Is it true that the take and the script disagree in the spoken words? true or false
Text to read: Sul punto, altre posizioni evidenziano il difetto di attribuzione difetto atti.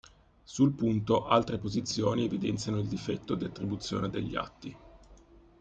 true